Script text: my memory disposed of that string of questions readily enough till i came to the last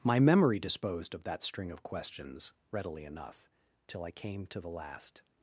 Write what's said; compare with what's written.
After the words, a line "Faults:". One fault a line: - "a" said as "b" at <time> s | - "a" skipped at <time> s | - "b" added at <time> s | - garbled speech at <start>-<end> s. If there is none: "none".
my memory disposed of that string of questions readily enough till i came to the last
Faults:
none